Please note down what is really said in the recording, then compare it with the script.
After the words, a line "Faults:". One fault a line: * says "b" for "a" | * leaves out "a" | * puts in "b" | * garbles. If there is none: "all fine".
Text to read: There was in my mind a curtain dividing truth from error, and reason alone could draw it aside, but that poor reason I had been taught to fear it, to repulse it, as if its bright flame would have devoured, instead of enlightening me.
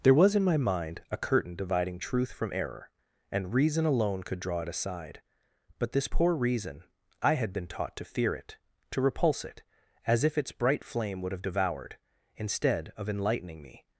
There was in my mind a curtain dividing truth from error, and reason alone could draw it aside, but this poor reason I had been taught to fear it, to repulse it, as if its bright flame would have devoured, instead of enlightening me.
Faults:
* says "this" for "that"